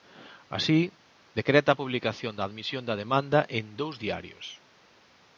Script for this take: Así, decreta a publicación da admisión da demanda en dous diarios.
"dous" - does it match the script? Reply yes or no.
yes